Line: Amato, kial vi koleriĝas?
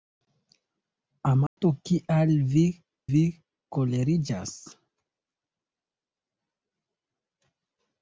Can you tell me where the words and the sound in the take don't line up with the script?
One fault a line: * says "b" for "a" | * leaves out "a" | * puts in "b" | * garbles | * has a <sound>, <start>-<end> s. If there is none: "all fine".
* has a dropout, 1.5-1.6 s
* puts in "vi"